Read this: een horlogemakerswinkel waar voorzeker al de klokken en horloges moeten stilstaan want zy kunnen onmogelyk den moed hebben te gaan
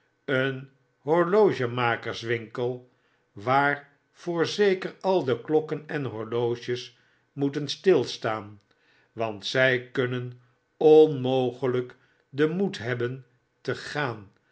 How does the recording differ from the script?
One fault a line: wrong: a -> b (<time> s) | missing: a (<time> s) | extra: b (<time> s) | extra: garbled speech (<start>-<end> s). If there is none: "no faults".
no faults